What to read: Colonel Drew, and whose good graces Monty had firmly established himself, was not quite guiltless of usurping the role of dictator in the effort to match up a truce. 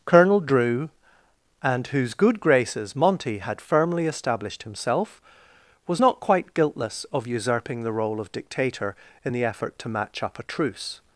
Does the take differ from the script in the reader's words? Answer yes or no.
no